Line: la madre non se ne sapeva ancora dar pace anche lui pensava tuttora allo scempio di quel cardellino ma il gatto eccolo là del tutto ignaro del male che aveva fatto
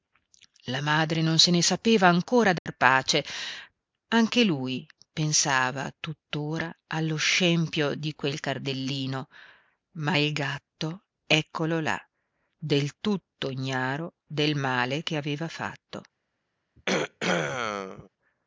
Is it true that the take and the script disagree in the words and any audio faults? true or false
true